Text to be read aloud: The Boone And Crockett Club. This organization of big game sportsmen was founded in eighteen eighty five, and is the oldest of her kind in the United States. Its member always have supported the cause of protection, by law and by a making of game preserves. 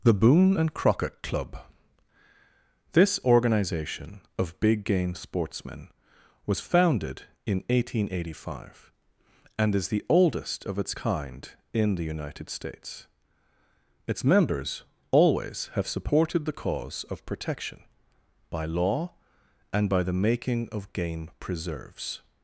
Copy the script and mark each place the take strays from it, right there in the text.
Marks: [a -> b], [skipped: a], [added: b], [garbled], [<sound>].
The Boone And Crockett Club. This organization of big game sportsmen was founded in eighteen eighty five, and is the oldest of [her -> its] kind in the United States. Its [member -> members] always have supported the cause of protection, by law and by [a -> the] making of game preserves.